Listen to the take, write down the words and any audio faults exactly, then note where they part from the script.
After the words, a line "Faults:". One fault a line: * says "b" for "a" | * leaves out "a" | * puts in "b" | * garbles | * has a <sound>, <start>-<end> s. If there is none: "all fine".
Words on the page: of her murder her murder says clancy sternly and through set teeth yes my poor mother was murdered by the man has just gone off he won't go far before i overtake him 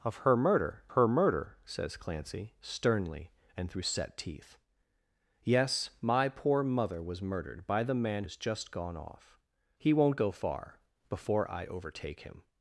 of her murder her murder says clancy sternly and through set teeth yes my poor mother was murdered by the man has just gone off he won't go far before i overtake him
Faults:
all fine